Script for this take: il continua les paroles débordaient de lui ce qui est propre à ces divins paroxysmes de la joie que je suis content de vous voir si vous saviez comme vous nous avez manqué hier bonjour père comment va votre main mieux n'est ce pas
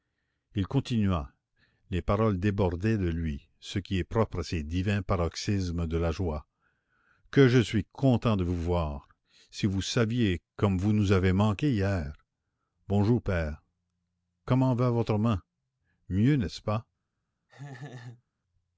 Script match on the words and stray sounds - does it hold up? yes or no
no